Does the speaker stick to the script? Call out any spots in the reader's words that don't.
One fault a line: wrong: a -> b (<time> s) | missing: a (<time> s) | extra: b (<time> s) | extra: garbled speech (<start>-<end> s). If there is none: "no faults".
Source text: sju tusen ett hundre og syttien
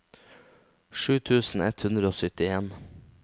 no faults